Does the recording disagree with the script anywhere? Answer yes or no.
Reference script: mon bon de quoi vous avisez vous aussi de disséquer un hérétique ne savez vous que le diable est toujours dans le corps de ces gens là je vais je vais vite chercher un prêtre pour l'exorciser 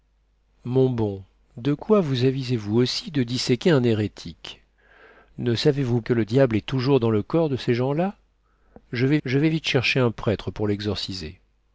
no